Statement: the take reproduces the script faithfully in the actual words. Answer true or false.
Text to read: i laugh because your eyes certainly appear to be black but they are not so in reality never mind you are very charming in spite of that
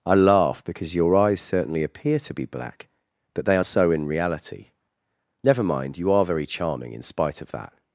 false